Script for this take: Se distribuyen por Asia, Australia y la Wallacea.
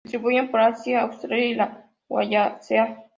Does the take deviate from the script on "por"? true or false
false